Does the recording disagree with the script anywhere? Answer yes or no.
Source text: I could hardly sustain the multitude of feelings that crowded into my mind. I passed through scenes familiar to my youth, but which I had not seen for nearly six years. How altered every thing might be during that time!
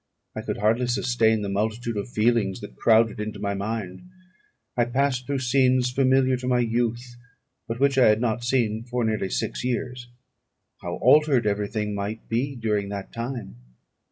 no